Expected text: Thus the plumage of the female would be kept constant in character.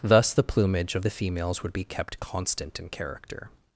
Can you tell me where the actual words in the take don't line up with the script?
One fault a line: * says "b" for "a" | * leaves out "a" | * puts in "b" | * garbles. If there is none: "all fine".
* says "females" for "female"